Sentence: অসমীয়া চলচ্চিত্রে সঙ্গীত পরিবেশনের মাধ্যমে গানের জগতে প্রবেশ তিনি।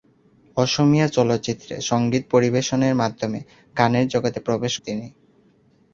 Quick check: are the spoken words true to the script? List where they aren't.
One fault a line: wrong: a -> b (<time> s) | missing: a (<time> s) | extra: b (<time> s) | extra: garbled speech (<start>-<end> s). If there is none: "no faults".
no faults